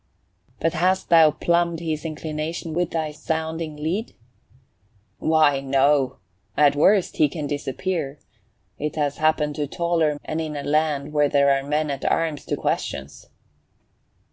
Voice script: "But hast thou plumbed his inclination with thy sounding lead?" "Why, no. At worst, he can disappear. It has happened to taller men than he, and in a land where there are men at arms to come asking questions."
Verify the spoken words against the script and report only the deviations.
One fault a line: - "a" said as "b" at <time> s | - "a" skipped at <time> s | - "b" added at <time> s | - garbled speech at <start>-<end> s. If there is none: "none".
- "men than he" skipped at 10.1 s
- "come asking" skipped at 12.6 s